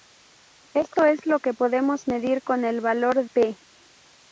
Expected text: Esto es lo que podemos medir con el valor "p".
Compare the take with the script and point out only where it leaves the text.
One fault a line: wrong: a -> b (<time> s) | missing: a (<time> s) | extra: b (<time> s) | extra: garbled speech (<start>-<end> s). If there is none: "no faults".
no faults